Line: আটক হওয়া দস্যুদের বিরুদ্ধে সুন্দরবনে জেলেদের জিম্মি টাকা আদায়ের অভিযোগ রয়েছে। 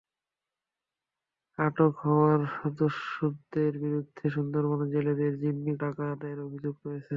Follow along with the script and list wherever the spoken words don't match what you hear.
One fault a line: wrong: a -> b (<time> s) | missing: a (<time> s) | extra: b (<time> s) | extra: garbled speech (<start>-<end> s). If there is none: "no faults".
no faults